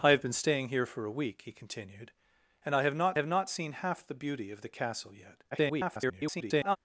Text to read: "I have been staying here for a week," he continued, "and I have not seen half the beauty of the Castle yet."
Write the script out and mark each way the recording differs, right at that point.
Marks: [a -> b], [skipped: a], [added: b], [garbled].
"I have been staying here for a week," he continued, "and I have not [added: have not] seen half the beauty of the Castle yet." [garbled]